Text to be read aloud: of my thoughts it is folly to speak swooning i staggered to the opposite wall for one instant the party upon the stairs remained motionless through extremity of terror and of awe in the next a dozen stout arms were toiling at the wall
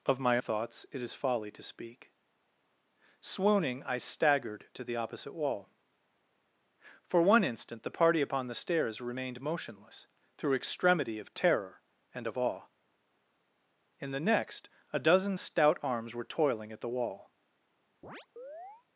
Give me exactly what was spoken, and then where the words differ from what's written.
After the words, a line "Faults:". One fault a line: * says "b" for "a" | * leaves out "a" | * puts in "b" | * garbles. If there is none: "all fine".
of my thoughts it is folly to speak swooning i staggered to the opposite wall for one instant the party upon the stairs remained motionless through extremity of terror and of awe in the next a dozen stout arms were toiling at the wall
Faults:
all fine